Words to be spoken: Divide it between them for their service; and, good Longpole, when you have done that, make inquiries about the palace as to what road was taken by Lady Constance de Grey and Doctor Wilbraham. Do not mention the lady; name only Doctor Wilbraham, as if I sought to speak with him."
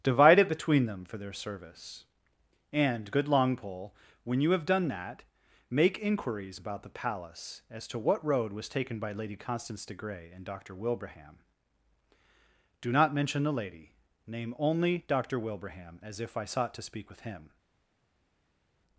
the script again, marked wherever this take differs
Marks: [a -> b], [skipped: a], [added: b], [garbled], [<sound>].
Divide it between them for their service; and, good Longpole, when you have done that, make inquiries about the palace as to what road was taken by Lady Constance de Grey and Doctor Wilbraham. Do not mention the lady; name only Doctor Wilbraham, as if I sought to speak with him."